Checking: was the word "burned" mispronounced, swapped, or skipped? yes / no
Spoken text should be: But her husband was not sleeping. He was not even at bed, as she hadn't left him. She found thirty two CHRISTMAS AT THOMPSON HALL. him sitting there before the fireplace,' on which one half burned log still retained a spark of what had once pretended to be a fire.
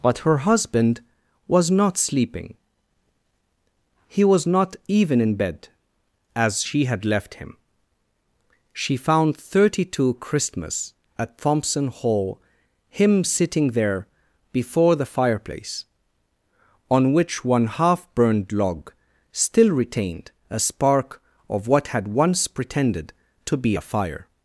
no